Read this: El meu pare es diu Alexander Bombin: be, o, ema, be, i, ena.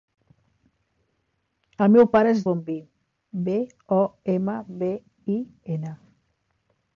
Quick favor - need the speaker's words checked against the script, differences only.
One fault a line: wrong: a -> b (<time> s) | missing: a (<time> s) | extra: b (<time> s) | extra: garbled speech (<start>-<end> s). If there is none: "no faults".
missing: diu Alexander (2.4 s)